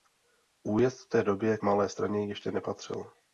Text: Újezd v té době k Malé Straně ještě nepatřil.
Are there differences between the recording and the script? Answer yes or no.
yes